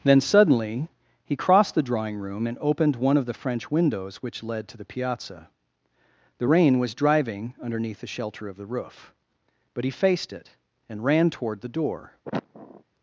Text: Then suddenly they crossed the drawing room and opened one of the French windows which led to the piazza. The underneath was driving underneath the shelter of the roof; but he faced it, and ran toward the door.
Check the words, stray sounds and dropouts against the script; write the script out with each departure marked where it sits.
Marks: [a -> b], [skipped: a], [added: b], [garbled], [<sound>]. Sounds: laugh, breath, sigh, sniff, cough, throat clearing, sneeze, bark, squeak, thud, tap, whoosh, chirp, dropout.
Then suddenly [they -> he] crossed the drawing room and opened one of the French windows which led to the piazza. The [underneath -> rain] was driving underneath the shelter of the roof; but he faced it, and ran toward the door. [sniff]